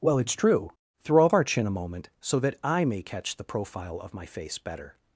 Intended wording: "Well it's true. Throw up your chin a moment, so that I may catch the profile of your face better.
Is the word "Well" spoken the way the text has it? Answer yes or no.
yes